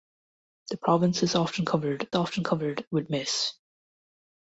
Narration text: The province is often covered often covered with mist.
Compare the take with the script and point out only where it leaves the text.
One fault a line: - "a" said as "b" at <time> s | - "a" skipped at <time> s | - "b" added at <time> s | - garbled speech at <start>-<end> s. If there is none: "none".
none